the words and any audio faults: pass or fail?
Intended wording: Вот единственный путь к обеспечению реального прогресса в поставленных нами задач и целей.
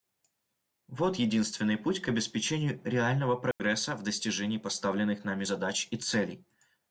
fail